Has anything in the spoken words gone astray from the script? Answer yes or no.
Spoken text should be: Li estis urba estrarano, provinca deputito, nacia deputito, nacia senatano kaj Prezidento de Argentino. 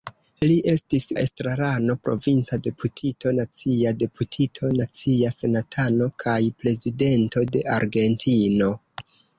yes